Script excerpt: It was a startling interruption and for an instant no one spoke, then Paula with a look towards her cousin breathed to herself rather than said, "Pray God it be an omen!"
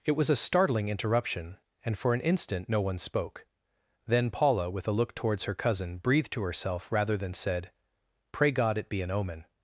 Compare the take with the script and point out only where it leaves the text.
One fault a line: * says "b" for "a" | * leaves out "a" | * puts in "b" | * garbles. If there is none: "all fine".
all fine